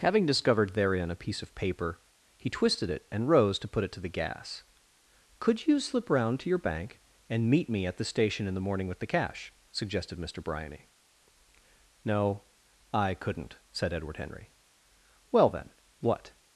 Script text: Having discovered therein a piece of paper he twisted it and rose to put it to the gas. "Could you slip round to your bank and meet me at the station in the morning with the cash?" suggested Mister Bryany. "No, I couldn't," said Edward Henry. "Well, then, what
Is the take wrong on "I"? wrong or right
right